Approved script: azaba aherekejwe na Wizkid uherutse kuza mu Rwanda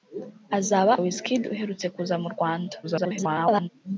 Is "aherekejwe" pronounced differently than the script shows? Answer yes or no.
yes